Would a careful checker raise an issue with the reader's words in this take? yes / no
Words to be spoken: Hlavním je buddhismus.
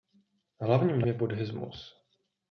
no